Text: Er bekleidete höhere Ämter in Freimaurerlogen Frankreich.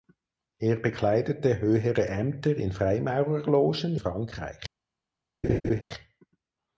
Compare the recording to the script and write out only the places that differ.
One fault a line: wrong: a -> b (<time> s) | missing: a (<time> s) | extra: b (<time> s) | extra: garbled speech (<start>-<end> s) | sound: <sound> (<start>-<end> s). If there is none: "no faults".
sound: laugh (5.4-5.8 s)